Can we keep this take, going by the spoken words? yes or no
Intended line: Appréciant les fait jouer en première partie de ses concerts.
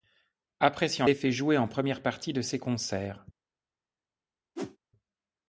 yes